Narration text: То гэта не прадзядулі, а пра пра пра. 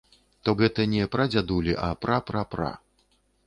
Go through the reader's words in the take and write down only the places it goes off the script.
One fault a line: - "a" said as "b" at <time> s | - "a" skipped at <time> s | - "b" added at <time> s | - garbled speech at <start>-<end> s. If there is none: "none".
none